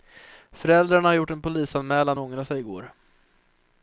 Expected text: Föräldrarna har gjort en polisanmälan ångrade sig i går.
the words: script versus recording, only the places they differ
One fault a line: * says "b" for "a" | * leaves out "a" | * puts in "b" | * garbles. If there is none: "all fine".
all fine